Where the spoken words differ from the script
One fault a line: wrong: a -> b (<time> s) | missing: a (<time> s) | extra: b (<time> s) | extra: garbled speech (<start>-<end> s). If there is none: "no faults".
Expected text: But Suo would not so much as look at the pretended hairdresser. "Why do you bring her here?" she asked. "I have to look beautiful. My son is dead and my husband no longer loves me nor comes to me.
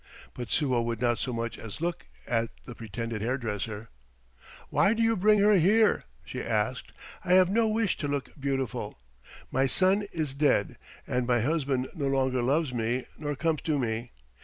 extra: no wish (7.5 s)